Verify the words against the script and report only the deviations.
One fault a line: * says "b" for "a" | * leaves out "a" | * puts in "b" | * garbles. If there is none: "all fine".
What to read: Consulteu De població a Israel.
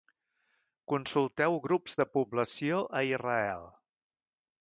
* puts in "Grups"